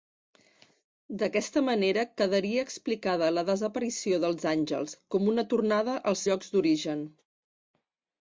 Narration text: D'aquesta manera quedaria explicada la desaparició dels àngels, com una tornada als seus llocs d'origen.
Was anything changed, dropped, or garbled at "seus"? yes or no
yes